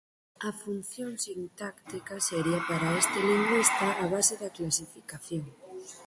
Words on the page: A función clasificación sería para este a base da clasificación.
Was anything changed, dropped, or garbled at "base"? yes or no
no